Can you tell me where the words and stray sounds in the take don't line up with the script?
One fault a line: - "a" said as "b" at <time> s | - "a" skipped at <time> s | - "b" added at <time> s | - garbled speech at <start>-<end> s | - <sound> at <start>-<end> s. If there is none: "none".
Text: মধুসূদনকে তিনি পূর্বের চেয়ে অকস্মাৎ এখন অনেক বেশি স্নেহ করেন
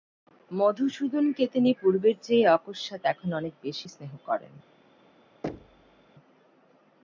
- thud at 5.4-6.1 s